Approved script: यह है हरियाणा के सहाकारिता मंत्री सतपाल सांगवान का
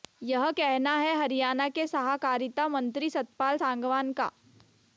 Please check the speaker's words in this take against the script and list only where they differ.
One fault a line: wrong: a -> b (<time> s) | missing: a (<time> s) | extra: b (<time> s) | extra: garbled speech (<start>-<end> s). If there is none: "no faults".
extra: कहना (0.5 s)